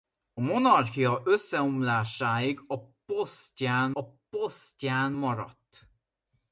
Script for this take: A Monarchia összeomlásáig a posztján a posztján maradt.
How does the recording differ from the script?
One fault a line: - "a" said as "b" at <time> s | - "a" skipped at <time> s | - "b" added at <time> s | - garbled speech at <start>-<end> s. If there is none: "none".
none